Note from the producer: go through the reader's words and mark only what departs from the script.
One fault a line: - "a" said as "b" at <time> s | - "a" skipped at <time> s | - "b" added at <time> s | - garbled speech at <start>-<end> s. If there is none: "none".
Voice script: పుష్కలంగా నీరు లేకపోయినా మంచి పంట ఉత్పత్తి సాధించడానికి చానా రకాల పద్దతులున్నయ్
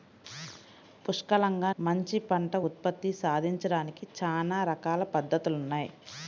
- "నీరు లేకపోయినా" skipped at 1.7 s